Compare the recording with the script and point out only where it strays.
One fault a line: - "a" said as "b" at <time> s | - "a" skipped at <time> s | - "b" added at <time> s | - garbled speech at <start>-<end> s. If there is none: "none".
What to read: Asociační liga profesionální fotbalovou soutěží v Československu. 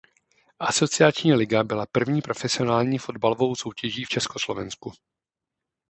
- "byla první" added at 1.6 s